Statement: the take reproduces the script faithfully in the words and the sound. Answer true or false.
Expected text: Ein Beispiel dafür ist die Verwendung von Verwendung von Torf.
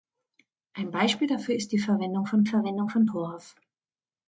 true